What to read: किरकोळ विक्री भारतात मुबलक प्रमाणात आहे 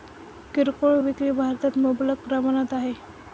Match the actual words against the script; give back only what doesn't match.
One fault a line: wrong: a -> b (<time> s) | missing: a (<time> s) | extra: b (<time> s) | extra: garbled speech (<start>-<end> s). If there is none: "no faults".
no faults